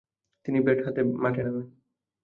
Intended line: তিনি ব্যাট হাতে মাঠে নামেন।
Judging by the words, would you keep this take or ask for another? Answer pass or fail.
pass